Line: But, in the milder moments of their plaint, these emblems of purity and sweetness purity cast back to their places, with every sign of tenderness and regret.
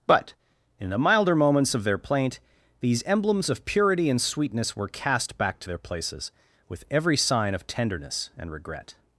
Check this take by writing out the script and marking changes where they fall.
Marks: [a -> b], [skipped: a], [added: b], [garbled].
But, in the milder moments of their plaint, these emblems of purity and sweetness [purity -> were] cast back to their places, with every sign of tenderness and regret.